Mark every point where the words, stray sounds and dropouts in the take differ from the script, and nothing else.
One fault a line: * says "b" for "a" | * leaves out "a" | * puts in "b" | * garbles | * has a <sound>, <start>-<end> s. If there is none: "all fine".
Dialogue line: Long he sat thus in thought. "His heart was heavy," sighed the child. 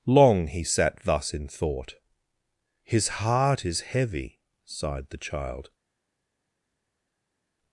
* says "is" for "was"